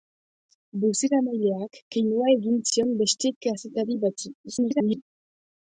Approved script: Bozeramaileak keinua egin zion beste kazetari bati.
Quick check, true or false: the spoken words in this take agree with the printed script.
false